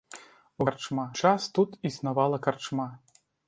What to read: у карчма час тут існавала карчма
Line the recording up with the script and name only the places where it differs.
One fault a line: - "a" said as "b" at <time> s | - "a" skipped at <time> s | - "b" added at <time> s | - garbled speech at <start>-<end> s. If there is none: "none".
none